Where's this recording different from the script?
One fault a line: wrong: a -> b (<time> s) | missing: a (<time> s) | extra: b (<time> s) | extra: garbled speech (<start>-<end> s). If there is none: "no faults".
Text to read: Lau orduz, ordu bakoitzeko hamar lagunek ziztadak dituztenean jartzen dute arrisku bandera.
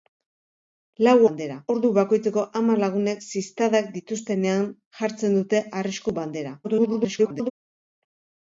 wrong: orduz -> bandera (1.3 s)
extra: garbled speech (6.6-7.5 s)